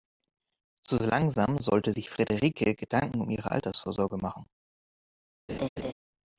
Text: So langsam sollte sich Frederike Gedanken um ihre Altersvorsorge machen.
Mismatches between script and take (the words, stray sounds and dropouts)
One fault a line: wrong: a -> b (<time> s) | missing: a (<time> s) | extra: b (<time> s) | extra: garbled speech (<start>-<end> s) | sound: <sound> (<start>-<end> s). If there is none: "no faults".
sound: laugh (5.5-5.9 s)